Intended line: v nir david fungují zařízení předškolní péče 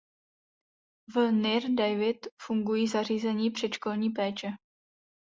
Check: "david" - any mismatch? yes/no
no